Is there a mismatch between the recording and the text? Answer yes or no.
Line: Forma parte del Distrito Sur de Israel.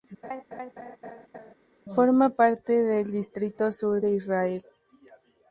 no